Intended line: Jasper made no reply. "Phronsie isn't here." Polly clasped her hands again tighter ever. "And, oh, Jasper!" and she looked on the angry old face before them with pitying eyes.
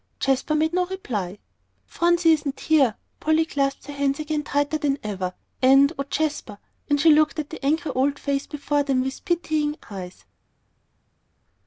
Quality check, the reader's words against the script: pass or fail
fail